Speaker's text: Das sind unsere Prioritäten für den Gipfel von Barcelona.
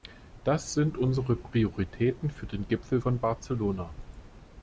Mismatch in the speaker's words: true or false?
false